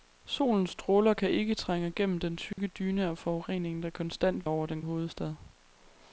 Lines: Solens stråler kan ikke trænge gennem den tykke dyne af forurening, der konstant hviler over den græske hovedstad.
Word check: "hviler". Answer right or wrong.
wrong